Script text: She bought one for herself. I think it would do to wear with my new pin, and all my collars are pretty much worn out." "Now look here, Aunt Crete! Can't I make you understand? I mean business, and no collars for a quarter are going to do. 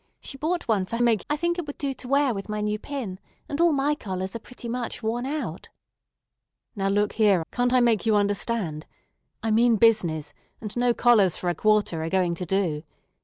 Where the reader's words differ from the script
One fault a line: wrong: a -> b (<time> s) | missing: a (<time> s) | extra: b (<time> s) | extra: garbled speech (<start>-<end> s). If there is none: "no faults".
wrong: herself -> make (1.0 s)
missing: Aunt Crete (7.4 s)